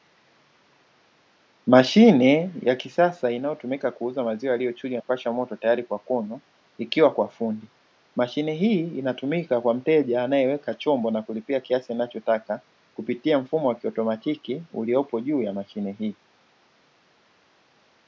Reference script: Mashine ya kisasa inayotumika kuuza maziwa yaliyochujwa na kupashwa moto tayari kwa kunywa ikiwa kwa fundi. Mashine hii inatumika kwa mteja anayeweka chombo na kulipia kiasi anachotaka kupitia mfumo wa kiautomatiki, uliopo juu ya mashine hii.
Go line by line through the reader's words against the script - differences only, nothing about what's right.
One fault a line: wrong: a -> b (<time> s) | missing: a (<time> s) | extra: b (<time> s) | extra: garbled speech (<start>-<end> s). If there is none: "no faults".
missing: na (5.0 s)